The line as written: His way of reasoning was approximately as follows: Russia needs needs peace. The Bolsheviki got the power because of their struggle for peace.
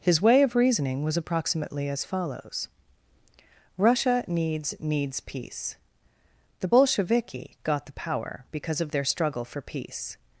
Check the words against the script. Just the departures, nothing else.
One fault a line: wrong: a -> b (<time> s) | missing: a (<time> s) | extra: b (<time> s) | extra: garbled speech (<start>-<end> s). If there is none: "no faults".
no faults